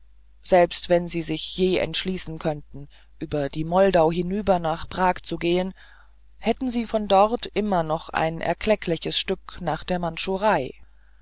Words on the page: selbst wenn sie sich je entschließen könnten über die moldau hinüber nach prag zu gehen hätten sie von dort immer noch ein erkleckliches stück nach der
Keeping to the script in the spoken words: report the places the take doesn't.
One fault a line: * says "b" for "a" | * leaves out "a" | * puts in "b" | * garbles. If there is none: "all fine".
all fine